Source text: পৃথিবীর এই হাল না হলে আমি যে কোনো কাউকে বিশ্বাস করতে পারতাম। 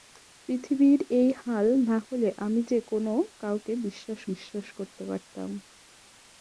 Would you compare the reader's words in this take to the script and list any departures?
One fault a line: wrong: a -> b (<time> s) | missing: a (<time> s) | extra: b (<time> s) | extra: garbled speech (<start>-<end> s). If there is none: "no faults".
extra: বিশ্বাস (4.3 s)